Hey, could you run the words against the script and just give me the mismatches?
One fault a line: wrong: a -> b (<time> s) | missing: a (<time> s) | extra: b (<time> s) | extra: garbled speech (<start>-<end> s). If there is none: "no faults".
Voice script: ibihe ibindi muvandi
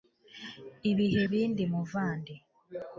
no faults